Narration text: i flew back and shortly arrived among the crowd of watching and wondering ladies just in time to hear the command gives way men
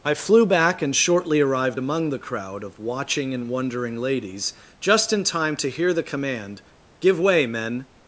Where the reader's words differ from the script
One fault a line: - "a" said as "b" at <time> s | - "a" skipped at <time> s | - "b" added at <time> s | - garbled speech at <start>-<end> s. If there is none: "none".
- "gives" said as "give" at 7.0 s